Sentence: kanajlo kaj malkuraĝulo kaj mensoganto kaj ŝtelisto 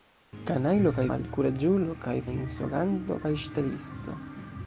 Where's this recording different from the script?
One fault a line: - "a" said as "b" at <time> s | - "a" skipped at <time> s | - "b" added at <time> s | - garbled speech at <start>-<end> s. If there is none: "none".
none